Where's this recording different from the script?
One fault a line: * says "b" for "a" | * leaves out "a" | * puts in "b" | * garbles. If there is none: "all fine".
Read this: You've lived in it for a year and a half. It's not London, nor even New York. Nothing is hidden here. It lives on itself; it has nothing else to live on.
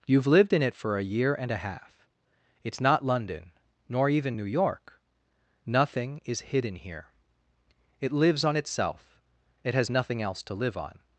all fine